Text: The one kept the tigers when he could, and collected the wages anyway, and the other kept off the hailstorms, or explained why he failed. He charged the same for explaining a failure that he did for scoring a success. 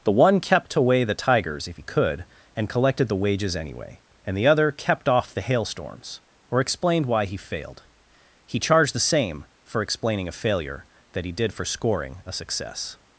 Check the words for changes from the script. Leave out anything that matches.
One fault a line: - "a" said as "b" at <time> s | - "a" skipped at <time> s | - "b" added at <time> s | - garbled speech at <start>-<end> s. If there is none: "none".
- "away" added at 0.8 s
- "when" said as "if" at 1.7 s